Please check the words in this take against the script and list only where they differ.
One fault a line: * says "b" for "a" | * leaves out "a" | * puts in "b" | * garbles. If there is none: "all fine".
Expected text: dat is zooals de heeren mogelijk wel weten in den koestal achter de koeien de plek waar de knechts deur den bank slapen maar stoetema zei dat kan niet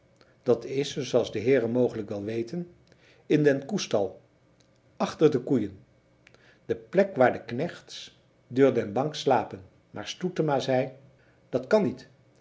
all fine